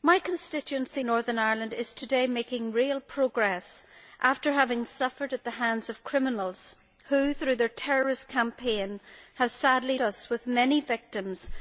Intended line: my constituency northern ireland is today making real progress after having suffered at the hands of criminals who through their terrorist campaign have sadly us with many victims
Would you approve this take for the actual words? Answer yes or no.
yes